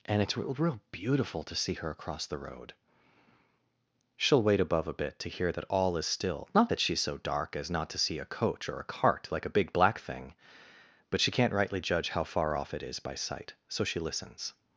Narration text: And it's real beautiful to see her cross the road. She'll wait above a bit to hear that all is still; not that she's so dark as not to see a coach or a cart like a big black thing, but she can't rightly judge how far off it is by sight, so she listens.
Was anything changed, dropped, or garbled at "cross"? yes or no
yes